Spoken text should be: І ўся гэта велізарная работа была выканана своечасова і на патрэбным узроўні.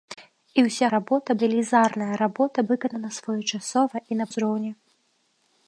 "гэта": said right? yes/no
no